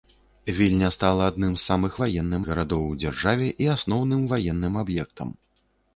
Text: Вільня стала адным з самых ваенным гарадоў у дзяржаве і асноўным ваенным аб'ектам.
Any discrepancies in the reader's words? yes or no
no